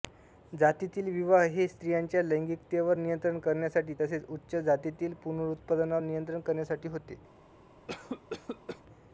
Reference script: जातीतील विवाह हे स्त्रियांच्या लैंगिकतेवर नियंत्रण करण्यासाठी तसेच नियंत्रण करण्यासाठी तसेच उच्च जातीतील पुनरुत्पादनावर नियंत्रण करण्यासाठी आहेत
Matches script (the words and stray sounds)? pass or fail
fail